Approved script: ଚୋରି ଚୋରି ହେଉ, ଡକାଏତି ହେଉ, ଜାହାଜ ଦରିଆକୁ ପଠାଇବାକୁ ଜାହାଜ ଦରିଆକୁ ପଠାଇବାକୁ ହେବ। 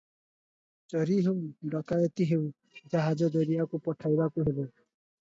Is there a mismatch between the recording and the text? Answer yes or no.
yes